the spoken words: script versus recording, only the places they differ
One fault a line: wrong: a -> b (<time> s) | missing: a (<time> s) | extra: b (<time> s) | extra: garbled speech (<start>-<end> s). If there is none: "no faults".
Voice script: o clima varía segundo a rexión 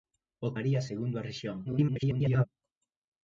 missing: clima (0.5 s)
extra: garbled speech (1.6-2.5 s)